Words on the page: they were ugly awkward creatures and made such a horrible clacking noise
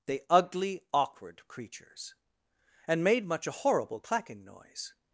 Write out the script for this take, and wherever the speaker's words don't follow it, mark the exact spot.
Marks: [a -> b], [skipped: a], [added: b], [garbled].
they [skipped: were] ugly awkward creatures and made [such -> much] a horrible clacking noise